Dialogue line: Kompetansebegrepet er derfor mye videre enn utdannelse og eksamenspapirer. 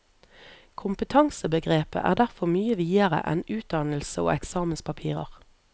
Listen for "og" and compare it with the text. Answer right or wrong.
right